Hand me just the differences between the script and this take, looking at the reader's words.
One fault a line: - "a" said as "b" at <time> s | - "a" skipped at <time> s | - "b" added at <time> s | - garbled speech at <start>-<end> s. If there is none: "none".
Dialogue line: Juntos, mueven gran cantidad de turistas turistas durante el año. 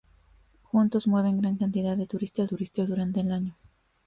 none